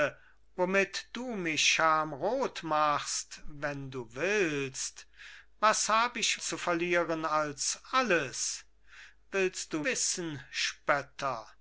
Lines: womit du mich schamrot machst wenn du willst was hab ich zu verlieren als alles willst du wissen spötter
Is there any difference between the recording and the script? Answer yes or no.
no